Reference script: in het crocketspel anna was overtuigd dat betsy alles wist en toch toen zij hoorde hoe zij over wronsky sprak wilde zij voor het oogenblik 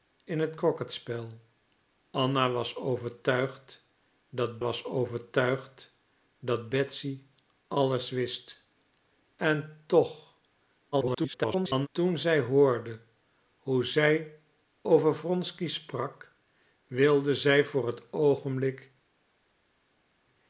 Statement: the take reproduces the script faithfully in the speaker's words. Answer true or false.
false